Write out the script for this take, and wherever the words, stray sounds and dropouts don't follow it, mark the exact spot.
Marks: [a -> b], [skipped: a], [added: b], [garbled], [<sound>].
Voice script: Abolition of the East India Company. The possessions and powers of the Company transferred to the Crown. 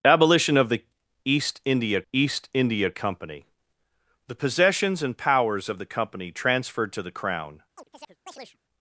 Abolition of the East India [added: East India] Company. The possessions and powers of the Company transferred to the Crown. [chirp]